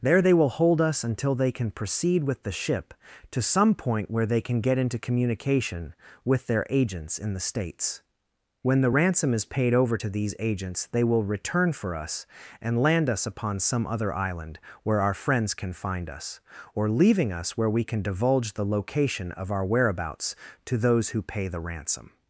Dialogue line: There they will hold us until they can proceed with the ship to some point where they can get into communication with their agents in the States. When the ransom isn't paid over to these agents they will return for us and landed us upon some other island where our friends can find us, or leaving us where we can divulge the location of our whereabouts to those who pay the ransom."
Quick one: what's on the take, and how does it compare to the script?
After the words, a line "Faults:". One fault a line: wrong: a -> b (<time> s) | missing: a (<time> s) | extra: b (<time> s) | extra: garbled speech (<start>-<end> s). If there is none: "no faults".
There they will hold us until they can proceed with the ship to some point where they can get into communication with their agents in the States. When the ransom is paid over to these agents they will return for us and land us upon some other island where our friends can find us, or leaving us where we can divulge the location of our whereabouts to those who pay the ransom."
Faults:
wrong: isn't -> is (9.3 s)
wrong: landed -> land (12.8 s)